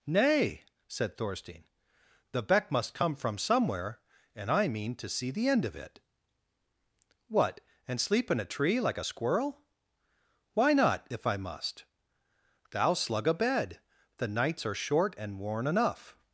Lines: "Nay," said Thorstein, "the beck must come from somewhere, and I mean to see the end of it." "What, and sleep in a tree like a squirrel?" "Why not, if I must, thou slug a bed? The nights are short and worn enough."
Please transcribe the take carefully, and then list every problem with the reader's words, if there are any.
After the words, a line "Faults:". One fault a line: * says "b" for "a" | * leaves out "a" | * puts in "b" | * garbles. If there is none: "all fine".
"Nay," said Thorstein, "the beck must come from somewhere, and I mean to see the end of it." "What, and sleep in a tree like a squirrel?" "Why not, if I must, thou slug a bed? The nights are short and worn enough."
Faults:
all fine